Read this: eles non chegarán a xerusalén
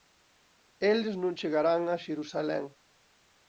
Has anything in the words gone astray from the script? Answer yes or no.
no